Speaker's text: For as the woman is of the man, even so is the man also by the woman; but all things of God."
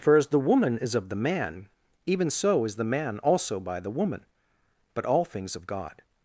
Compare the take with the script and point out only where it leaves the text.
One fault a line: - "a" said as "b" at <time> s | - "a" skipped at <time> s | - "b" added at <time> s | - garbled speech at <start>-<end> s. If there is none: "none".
none